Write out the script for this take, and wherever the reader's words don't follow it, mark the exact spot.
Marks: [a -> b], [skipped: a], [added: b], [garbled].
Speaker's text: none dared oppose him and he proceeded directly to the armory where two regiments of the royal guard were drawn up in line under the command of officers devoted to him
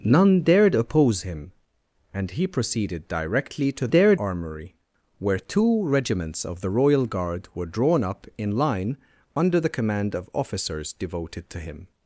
none dared oppose him and he proceeded directly to [the -> dared] armory where two regiments of the royal guard were drawn up in line under the command of officers devoted to him